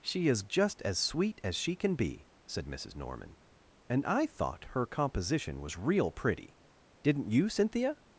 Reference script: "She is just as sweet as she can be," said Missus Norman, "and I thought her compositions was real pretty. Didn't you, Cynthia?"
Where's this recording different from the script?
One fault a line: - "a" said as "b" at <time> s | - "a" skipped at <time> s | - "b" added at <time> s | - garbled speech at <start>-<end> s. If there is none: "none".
- "compositions" said as "composition" at 4.9 s